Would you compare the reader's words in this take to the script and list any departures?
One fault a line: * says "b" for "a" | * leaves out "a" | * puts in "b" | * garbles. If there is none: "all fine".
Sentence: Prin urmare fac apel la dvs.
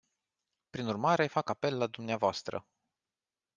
all fine